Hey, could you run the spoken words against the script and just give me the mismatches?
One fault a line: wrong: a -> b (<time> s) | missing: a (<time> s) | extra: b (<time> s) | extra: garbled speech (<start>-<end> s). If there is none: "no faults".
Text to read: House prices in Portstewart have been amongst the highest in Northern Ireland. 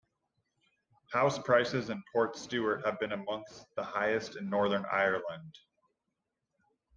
no faults